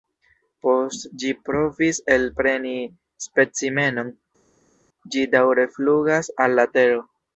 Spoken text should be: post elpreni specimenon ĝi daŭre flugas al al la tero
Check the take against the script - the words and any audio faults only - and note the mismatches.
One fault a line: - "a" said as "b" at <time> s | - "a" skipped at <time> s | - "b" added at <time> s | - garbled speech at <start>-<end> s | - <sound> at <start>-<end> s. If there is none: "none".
- "ĝi provis" added at 1.2 s
- "al" skipped at 6.6 s